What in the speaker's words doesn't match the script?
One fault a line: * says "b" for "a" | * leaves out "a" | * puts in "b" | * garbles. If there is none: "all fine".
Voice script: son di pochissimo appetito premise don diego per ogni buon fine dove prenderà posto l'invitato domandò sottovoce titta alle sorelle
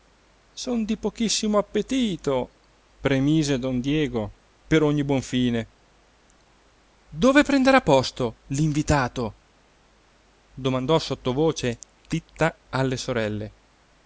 all fine